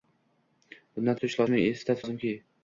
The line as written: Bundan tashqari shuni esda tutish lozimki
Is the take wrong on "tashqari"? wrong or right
wrong